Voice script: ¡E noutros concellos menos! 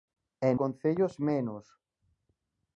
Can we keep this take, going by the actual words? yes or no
no